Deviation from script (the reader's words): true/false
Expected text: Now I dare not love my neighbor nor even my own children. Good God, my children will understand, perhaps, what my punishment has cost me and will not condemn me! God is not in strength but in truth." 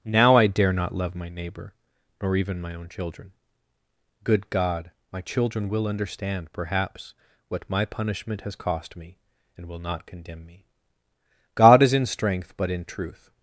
true